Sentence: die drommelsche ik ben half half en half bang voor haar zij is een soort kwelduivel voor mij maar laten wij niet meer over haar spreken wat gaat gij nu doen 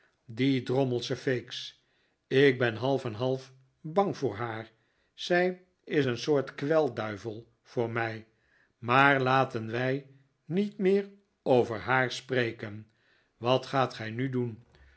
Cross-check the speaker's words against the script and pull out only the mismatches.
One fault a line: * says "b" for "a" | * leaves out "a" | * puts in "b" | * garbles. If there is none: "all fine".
* puts in "feeks"
* leaves out "half"